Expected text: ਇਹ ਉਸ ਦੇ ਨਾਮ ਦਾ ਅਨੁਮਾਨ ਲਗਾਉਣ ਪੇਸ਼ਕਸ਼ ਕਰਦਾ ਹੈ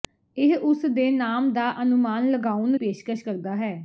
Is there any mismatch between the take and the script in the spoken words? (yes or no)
no